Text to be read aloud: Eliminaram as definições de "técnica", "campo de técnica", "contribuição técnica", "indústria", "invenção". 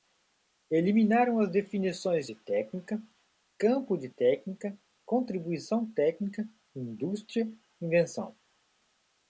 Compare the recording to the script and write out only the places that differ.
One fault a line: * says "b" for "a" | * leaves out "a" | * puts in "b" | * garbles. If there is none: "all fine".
all fine